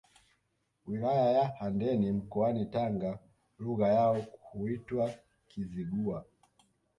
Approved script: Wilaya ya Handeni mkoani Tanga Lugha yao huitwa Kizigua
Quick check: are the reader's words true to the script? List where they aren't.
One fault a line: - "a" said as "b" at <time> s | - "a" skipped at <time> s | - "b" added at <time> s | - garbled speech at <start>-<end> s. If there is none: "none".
none